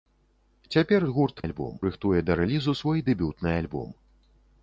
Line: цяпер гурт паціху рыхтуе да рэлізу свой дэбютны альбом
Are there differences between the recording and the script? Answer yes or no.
yes